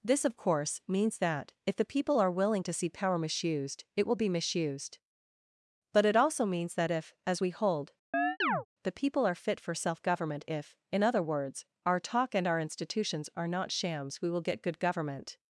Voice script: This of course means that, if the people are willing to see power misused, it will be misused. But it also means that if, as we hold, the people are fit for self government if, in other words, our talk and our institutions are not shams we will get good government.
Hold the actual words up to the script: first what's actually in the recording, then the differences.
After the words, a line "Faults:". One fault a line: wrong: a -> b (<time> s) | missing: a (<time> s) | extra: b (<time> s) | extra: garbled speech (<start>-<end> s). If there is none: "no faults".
This of course means that, if the people are willing to see power misused, it will be misused. But it also means that if, as we hold, the people are fit for self government if, in other words, our talk and our institutions are not shams we will get good government.
Faults:
no faults